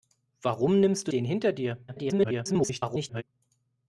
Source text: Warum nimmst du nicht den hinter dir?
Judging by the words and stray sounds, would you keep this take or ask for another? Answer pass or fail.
fail